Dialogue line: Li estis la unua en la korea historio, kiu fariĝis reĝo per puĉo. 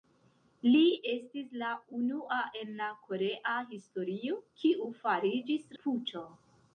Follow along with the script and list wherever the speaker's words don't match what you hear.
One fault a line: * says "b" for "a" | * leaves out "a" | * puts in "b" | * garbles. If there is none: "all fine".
* leaves out "reĝo per"